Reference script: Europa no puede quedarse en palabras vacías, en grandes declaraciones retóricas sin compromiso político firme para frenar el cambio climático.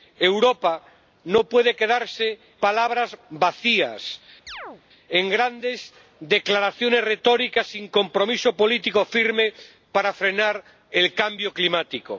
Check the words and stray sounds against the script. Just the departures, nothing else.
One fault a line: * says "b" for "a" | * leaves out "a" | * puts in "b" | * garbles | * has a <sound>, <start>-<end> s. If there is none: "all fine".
* leaves out "en"
* has a chirp, 4.5-4.8 s